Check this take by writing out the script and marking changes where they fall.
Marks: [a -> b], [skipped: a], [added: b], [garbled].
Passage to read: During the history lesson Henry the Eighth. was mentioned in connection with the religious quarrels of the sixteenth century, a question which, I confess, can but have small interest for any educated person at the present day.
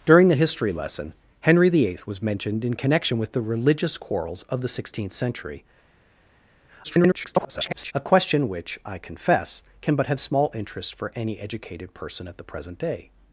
During the history lesson Henry the Eighth. was mentioned in connection with the religious quarrels of the sixteenth century, [garbled] a question which, I confess, can but have small interest for any educated person at the present day.